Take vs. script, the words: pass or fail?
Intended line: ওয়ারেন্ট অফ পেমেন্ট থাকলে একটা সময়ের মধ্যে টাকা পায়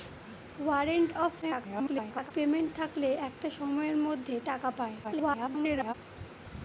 fail